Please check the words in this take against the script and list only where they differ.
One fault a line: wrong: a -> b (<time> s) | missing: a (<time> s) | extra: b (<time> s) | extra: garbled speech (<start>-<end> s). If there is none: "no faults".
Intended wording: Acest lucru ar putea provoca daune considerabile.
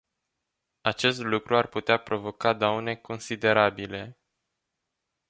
no faults